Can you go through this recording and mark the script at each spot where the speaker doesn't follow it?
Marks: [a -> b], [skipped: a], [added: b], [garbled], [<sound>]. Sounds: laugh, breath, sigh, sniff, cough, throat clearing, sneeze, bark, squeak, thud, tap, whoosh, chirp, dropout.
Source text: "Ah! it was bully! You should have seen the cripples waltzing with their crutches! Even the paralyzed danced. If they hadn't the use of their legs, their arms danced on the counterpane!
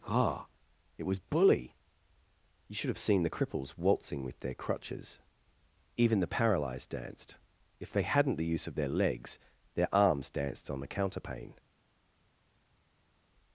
"Ah! it was bully! You should have seen the cripples waltzing with their crutches! Even the paralyzed danced. If they hadn't the use of their legs, their arms danced on the counterpane!